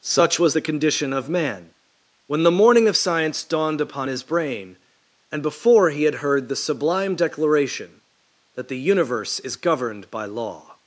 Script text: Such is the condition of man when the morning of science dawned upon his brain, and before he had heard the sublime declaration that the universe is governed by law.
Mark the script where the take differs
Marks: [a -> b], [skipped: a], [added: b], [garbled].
Such [is -> was] the condition of man when the morning of science dawned upon his brain, and before he had heard the sublime declaration that the universe is governed by law.